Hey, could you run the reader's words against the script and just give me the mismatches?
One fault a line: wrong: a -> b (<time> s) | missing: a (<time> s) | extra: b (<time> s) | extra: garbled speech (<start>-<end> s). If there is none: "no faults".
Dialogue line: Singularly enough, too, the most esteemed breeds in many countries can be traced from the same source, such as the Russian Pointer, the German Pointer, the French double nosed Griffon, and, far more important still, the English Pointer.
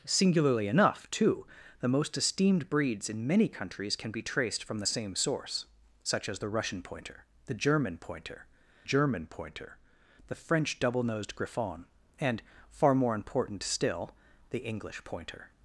extra: German Pointer (8.8 s)